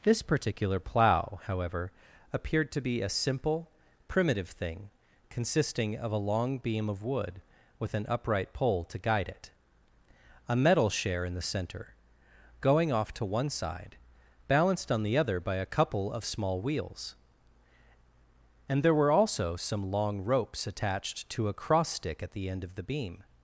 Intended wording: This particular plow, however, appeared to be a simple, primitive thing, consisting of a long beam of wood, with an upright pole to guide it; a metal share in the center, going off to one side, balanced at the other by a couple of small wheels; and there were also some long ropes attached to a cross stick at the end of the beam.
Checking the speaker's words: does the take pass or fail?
fail